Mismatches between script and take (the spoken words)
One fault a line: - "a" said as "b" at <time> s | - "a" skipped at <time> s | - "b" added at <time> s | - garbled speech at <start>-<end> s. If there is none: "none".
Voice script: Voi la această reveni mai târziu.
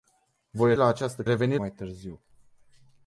none